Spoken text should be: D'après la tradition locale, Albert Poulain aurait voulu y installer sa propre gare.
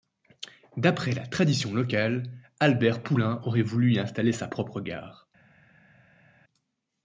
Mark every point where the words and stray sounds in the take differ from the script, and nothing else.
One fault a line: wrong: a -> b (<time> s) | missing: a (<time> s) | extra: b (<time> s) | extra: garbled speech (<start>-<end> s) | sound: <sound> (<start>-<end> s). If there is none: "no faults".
no faults